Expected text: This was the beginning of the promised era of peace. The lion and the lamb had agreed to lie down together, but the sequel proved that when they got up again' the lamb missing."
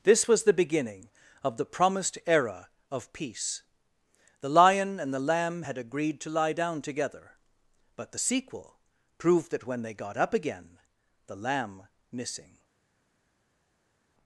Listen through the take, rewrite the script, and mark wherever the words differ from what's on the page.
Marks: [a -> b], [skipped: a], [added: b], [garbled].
This was the beginning of the promised era of peace. The lion and the lamb had agreed to lie down together, but the sequel proved that when they got up again' the lamb missing."